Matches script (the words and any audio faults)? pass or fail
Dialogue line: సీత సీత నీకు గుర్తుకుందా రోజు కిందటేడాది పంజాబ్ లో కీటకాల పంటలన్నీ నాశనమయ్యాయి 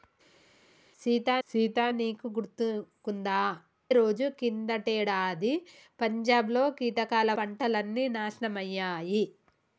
pass